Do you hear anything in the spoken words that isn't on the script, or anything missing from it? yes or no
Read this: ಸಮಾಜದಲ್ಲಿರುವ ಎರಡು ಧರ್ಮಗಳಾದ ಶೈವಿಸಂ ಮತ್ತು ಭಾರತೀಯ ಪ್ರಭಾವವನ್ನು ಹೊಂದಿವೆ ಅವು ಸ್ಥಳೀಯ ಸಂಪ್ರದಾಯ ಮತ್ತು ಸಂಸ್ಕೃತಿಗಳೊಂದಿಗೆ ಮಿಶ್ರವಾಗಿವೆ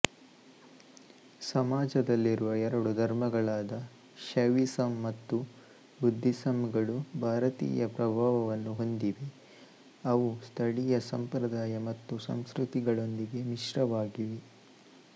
yes